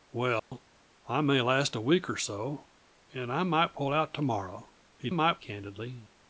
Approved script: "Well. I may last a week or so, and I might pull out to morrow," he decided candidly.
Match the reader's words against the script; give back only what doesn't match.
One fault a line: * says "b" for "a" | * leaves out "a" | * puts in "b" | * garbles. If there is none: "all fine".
* says "might" for "decided"